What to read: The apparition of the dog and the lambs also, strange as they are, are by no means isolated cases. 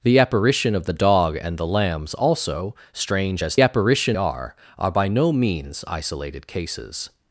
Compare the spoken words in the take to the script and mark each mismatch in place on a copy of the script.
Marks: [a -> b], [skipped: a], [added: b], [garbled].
The apparition of the dog and the lambs also, strange as [they -> apparition] are, are by no means isolated cases.